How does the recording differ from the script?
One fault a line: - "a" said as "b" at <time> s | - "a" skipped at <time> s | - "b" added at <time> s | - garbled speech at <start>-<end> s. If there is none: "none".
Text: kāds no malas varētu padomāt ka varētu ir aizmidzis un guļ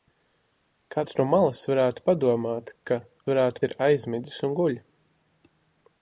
none